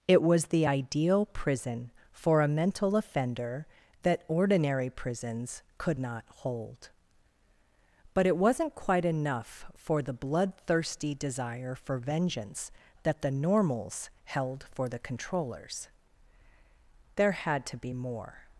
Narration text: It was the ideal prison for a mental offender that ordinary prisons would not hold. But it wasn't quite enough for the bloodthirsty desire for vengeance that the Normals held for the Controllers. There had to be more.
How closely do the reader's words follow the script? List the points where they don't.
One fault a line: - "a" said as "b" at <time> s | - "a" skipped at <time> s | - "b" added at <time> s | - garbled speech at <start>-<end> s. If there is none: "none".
- "would" said as "could" at 5.8 s